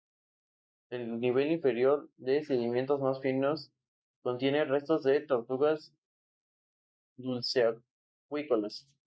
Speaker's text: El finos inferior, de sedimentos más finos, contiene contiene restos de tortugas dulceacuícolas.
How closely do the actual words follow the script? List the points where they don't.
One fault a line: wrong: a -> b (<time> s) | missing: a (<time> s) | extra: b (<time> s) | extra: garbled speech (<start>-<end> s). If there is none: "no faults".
wrong: finos -> nivel (1.2 s)
missing: contiene (4.7 s)